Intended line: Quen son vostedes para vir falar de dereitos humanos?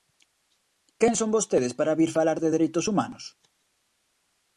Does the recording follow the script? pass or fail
pass